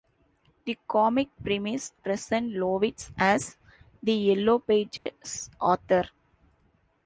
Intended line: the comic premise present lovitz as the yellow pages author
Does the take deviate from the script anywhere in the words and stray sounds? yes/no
yes